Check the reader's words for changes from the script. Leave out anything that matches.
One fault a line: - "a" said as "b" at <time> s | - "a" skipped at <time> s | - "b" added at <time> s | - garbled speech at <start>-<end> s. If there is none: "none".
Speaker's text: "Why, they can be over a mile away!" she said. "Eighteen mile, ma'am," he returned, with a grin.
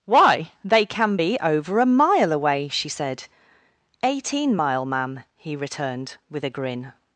none